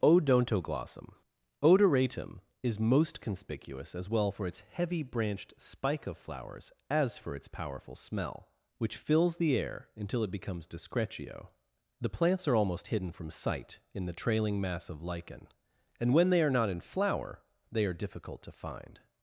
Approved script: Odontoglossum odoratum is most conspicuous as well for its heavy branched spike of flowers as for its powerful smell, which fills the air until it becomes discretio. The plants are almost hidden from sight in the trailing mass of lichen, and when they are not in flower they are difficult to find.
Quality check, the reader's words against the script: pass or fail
pass